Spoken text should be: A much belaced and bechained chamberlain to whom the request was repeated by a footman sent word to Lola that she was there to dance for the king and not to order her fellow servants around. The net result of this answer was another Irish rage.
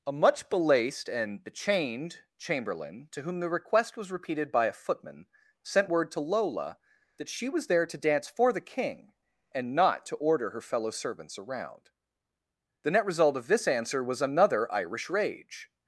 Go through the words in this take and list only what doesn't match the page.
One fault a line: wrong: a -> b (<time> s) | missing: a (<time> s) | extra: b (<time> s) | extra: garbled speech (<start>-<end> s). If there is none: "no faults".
no faults